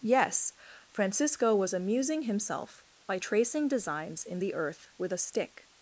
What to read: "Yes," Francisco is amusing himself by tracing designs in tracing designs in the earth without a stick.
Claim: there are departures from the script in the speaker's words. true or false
true